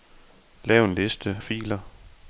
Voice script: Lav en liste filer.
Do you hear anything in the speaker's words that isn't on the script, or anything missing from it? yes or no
no